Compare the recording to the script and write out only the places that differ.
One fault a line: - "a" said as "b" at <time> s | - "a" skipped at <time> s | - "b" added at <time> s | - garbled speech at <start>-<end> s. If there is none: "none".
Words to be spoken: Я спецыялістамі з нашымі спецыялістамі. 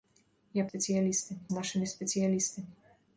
none